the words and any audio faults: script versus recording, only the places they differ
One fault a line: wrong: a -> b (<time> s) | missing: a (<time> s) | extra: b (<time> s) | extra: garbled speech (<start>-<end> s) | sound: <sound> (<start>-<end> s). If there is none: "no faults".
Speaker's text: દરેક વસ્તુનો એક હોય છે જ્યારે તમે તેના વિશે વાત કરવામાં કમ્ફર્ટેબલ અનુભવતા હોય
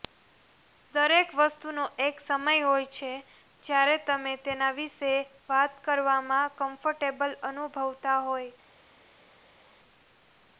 extra: સમય (2.2 s)